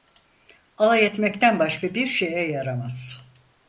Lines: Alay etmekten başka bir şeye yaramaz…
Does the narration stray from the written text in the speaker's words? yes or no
no